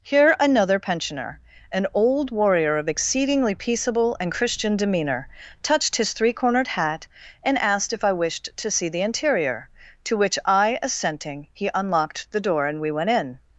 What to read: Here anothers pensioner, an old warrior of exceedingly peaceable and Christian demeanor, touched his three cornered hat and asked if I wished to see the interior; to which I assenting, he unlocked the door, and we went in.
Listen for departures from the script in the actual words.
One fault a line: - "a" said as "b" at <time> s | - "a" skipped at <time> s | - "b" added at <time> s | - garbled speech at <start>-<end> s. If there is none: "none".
- "anothers" said as "another" at 0.4 s